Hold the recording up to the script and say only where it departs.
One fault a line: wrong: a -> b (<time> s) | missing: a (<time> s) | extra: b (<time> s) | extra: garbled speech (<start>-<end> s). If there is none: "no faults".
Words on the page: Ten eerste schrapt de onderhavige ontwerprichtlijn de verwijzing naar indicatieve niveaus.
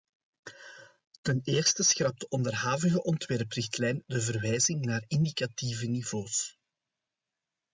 no faults